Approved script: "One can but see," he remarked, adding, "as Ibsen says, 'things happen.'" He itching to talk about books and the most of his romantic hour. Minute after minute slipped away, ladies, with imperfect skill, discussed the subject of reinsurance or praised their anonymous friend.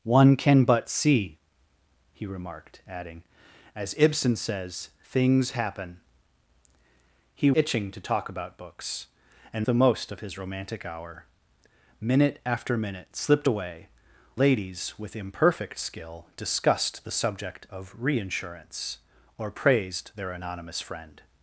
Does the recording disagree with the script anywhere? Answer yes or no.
no